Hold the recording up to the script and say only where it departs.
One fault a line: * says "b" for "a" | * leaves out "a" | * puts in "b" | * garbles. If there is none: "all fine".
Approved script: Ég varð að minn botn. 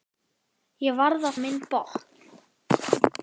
all fine